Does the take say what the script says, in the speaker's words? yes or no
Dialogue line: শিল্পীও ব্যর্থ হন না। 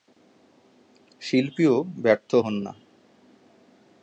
yes